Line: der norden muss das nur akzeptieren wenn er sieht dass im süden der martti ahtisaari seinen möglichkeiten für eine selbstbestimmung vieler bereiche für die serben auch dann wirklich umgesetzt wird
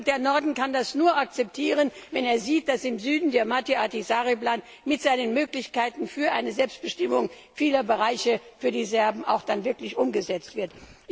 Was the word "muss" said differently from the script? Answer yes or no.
yes